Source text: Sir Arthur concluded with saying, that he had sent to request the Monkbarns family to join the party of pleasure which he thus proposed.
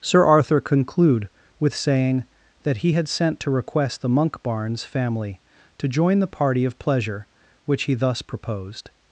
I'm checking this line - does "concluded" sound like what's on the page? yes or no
no